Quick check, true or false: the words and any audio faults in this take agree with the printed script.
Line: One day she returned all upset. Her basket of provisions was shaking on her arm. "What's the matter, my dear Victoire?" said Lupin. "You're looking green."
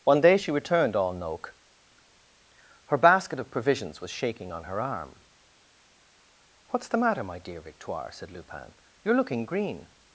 false